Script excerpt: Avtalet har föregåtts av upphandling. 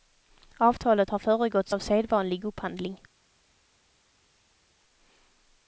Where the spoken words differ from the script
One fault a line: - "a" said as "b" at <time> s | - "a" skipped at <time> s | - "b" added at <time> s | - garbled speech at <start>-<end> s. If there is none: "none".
- "sedvanlig" added at 1.8 s